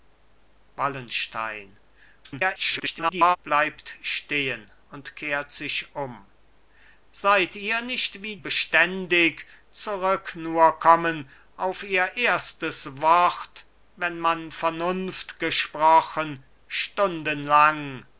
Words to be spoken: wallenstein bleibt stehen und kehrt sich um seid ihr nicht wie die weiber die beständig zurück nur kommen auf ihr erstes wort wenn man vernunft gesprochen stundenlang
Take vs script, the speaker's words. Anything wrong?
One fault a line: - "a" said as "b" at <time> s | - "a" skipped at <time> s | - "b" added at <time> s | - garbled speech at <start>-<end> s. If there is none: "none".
- garbled speech at 2.2-3.4 s
- "die weiber die" skipped at 8.4 s